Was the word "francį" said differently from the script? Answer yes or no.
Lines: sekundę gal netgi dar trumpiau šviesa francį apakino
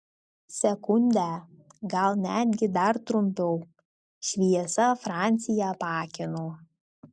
no